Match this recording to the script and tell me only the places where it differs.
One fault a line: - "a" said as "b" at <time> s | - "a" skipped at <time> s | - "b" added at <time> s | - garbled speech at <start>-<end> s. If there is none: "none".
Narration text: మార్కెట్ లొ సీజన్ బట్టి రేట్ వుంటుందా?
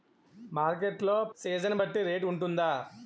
none